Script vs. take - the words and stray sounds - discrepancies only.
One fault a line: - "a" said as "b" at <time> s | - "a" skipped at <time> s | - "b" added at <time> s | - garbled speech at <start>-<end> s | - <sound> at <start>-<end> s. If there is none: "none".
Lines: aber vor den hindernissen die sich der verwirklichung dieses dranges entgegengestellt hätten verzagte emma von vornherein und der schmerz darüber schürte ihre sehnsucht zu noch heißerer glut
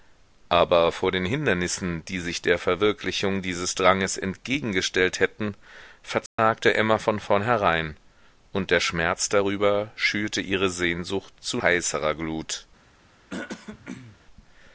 - dropout at 6.3-6.4 s
- "noch" skipped at 11.6 s
- throat clearing at 13.3-14.2 s